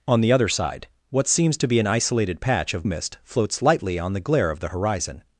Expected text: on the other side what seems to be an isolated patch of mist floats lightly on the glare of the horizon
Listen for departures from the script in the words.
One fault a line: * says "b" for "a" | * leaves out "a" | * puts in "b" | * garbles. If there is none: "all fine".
all fine